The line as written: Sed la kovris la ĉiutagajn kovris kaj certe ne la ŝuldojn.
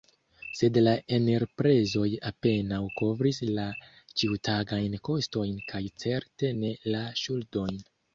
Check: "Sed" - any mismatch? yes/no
no